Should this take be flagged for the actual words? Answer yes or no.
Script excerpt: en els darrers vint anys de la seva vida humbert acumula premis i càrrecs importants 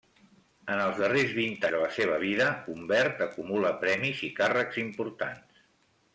yes